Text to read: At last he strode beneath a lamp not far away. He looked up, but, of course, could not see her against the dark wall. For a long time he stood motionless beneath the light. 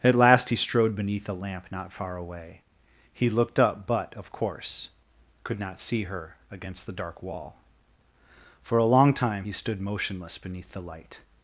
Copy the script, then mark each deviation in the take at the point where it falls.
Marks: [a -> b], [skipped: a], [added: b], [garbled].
At last he strode beneath a lamp not far away. He looked up, but, of course, could not see her against the dark wall. For a long time he stood motionless beneath the light.